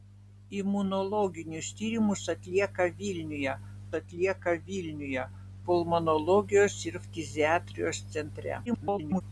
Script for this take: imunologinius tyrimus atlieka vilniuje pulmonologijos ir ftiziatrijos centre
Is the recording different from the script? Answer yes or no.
yes